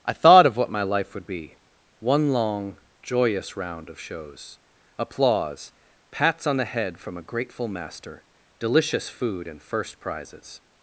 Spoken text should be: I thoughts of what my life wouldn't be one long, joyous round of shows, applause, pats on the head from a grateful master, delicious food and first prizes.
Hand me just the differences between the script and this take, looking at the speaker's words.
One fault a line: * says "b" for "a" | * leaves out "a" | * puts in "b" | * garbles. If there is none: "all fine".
* says "thought" for "thoughts"
* says "would" for "wouldn't"